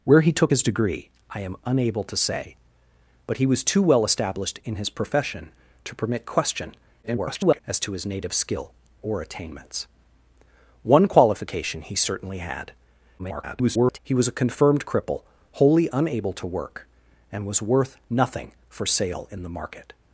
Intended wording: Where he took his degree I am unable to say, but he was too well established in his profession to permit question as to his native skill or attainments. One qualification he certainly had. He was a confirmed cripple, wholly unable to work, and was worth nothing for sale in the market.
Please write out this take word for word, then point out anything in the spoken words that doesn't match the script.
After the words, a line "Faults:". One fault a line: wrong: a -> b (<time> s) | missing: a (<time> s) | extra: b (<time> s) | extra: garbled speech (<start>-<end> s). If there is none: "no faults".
Where he took his degree I am unable to say, but he was too well established in his profession to permit question [garbled] as to his native skill or attainments. One qualification he certainly had. [garbled] He was a confirmed cripple, wholly unable to work, and was worth nothing for sale in the market.
Faults:
extra: garbled speech (7.0-7.6 s)
extra: garbled speech (13.2-14.0 s)